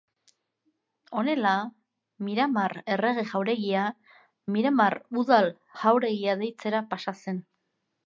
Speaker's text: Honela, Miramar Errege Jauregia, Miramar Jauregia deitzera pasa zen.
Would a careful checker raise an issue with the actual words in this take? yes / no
yes